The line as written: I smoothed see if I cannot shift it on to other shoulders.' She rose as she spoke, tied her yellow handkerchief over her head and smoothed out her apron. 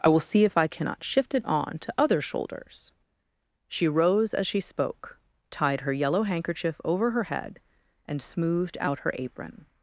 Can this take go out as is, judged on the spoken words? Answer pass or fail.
fail